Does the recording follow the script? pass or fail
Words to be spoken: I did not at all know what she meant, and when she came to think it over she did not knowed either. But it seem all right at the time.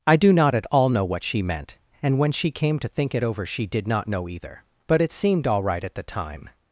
fail